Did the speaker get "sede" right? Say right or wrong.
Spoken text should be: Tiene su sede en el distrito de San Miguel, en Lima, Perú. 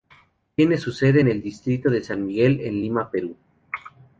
right